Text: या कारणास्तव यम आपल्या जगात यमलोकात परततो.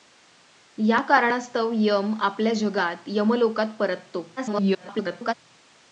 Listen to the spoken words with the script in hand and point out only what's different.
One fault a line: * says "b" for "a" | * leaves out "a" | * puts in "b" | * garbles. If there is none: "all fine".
* garbles